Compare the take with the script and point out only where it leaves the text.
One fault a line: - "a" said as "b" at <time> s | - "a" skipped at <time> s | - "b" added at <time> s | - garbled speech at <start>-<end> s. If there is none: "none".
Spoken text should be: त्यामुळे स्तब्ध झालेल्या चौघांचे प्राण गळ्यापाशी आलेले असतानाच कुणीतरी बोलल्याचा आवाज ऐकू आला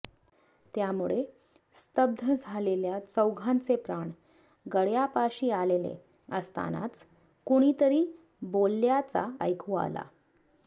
- "आवाज" skipped at 9.3 s